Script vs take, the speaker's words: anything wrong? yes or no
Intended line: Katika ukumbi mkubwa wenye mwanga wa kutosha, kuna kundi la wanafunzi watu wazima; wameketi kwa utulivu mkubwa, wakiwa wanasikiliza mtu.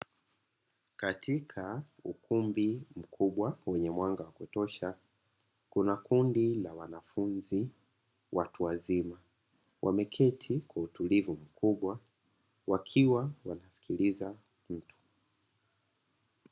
no